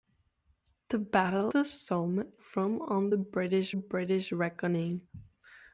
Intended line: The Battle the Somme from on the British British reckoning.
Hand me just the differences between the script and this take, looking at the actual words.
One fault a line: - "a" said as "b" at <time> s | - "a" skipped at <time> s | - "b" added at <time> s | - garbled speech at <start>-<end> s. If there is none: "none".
none